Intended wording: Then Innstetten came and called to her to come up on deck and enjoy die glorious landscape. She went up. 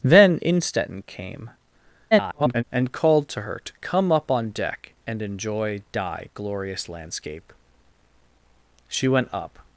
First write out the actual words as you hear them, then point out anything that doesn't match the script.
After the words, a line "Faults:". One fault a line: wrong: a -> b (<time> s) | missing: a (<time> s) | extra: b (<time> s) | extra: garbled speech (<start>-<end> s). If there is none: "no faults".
Then Innstetten came [garbled] and called to her to come up on deck and enjoy die glorious landscape. She went up.
Faults:
extra: garbled speech (2.1-2.6 s)